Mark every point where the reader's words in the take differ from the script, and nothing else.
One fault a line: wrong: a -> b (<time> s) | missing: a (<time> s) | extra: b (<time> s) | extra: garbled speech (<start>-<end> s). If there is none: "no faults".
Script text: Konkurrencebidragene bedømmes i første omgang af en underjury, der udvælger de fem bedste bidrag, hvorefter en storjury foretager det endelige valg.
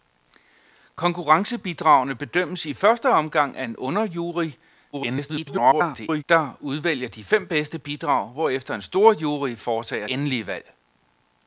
extra: garbled speech (4.9-6.2 s)
missing: det (10.1 s)